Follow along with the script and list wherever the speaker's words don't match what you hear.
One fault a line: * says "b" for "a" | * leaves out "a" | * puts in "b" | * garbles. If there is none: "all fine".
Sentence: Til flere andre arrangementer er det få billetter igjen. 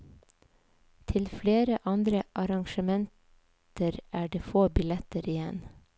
all fine